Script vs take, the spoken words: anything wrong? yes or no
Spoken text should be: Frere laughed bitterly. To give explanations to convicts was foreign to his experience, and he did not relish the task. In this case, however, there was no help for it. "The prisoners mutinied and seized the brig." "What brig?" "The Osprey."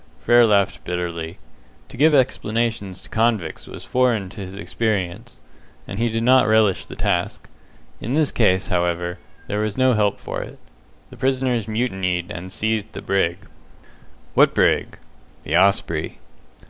no